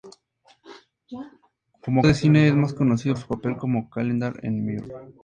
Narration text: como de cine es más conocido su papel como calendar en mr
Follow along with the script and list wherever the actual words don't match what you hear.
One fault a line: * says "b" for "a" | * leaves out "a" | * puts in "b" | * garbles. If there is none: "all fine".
all fine